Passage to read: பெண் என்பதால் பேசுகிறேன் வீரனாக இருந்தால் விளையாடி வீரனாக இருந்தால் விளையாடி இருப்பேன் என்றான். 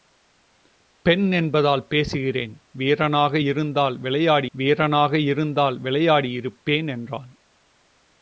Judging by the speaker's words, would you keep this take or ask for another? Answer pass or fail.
pass